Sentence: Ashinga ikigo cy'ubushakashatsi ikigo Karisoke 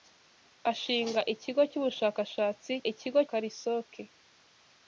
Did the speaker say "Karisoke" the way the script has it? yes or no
yes